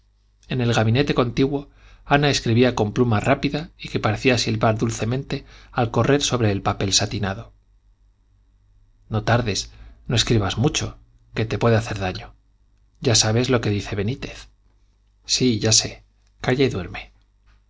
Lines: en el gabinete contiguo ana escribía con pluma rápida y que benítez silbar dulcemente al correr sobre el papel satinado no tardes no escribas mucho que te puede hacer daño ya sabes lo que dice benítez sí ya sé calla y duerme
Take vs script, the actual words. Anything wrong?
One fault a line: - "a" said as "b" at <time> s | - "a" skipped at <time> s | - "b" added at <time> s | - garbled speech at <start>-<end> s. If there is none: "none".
- "benítez" said as "parecía" at 4.0 s